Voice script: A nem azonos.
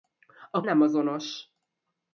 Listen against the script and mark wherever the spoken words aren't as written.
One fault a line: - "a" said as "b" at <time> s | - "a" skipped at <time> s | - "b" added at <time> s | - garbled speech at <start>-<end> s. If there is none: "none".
none